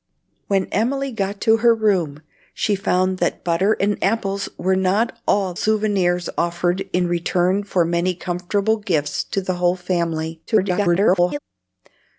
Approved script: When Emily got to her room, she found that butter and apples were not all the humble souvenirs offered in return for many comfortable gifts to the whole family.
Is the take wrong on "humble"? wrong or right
wrong